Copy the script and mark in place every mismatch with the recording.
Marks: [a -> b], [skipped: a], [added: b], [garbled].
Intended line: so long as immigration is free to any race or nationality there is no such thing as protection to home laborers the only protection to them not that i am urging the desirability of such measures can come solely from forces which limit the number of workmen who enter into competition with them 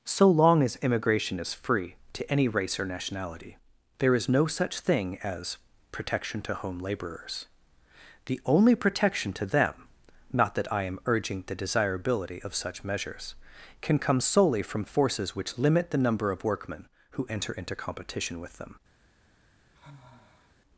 so long as immigration is free to any race or nationality there is no such thing as protection to home laborers the only protection to them not that i am urging the desirability of such measures can come solely from forces which limit the number of workmen who enter into competition with them